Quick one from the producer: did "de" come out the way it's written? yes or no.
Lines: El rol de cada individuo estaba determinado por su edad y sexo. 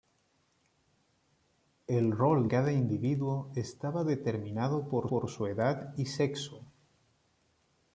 no